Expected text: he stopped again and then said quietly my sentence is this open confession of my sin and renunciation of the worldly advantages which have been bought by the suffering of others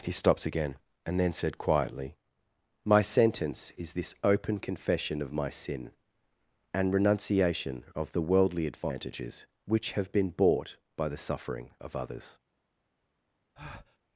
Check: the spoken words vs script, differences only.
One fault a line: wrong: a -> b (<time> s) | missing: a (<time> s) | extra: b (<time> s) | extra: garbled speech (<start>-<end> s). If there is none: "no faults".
no faults